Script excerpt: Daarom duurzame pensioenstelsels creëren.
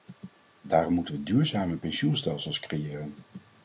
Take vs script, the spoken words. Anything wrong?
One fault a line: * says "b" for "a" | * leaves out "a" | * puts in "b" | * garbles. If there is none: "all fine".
* puts in "moeten we"